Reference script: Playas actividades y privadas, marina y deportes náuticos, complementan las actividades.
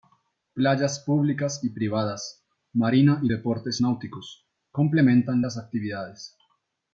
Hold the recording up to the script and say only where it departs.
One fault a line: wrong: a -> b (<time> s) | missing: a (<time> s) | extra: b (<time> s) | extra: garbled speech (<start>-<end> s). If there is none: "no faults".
wrong: actividades -> públicas (1.1 s)